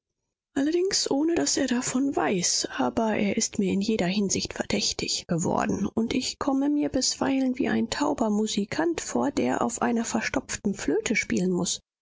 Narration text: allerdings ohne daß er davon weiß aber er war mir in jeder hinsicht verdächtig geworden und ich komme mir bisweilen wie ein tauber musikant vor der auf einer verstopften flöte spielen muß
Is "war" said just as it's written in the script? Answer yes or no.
no